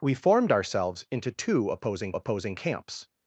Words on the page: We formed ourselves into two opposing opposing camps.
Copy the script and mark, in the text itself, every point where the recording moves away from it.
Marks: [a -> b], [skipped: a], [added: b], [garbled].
We formed ourselves into two opposing opposing camps.